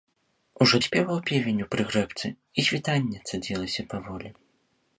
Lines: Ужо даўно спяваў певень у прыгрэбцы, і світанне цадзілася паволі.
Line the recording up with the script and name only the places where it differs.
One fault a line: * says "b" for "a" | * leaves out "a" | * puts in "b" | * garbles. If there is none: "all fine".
* leaves out "даўно"